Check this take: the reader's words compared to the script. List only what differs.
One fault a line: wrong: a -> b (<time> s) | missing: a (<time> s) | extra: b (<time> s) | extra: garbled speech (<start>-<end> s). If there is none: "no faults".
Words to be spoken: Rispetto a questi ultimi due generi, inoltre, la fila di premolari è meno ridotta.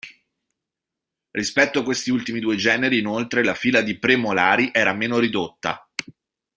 wrong: è -> era (4.7 s)